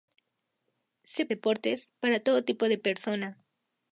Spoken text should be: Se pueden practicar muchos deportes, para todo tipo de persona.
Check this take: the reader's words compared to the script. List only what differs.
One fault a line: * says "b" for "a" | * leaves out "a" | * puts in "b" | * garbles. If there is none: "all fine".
* leaves out "pueden practicar muchos"